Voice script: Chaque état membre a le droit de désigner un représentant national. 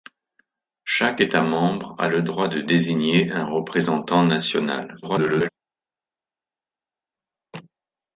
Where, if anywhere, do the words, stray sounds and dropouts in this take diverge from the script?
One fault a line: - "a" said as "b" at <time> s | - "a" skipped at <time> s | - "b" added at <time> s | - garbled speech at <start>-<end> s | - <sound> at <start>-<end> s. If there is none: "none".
- garbled speech at 5.0-5.5 s